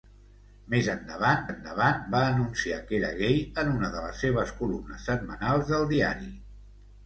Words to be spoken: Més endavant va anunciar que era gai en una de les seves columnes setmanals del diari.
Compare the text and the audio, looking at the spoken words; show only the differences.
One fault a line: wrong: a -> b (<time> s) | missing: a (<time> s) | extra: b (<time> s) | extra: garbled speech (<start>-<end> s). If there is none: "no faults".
extra: endavant (1.5 s)